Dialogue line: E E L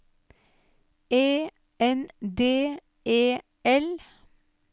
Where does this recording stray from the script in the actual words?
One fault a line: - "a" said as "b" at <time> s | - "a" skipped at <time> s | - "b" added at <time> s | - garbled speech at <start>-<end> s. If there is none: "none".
- "N D" added at 1.8 s